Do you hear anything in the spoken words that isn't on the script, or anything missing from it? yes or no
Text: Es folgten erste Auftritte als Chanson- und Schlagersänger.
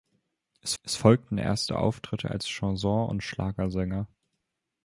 yes